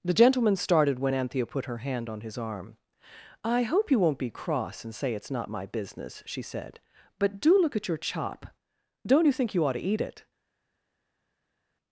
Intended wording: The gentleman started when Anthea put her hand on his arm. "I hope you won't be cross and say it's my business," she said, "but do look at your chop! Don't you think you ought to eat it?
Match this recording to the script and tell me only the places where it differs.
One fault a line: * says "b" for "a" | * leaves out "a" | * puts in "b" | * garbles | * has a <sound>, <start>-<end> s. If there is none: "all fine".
* puts in "not"